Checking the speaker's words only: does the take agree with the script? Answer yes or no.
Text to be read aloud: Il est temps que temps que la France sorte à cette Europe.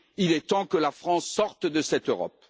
no